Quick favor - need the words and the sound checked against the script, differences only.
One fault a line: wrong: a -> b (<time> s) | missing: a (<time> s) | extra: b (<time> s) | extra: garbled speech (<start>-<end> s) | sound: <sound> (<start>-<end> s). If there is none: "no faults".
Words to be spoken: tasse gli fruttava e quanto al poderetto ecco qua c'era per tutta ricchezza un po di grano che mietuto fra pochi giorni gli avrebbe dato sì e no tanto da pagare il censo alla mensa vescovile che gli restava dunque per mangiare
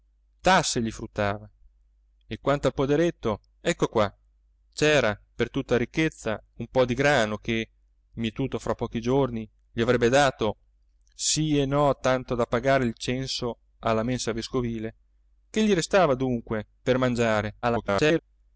extra: garbled speech (17.6-18.2 s)